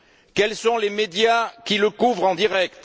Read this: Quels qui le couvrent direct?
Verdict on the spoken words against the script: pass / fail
fail